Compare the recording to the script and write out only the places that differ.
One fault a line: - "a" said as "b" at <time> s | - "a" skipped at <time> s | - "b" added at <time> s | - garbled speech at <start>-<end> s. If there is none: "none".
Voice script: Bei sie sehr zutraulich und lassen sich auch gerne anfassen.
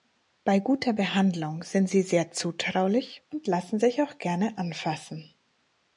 - "guter Behandlung sind" added at 0.6 s